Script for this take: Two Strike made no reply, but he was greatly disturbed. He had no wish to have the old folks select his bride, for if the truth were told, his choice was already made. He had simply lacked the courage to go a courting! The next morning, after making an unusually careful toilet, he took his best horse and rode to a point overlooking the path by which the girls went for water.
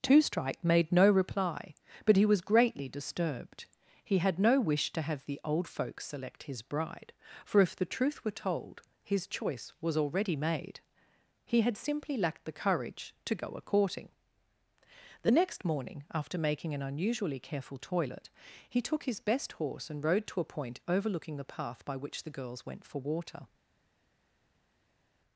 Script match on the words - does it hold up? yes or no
yes